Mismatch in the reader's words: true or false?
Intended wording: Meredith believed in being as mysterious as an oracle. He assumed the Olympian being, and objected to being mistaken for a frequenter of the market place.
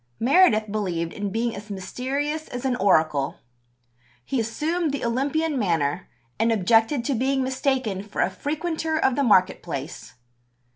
true